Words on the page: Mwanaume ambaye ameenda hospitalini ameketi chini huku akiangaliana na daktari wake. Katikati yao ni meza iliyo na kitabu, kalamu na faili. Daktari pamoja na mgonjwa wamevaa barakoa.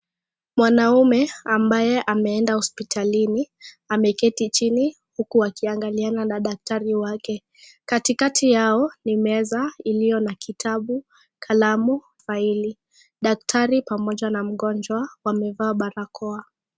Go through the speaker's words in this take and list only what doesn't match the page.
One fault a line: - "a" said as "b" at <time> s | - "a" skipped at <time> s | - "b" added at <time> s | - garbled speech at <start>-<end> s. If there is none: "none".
- "na" skipped at 12.0 s